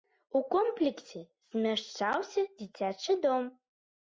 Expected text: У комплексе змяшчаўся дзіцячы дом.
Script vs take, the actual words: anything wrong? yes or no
no